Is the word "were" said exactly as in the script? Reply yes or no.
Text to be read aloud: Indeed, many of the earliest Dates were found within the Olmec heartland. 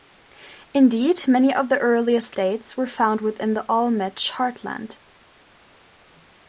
yes